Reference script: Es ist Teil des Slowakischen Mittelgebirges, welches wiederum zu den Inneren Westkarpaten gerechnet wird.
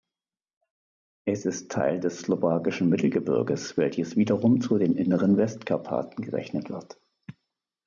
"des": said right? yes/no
yes